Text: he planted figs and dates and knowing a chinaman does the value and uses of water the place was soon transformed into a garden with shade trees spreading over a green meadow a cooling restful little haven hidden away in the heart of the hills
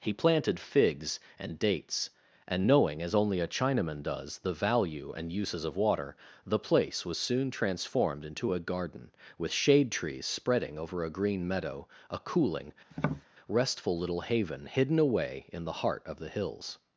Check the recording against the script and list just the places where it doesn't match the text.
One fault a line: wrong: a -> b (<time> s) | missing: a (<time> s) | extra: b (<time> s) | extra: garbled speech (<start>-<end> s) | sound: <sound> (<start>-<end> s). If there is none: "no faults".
extra: as only (3.0 s)
sound: tap (12.9-13.3 s)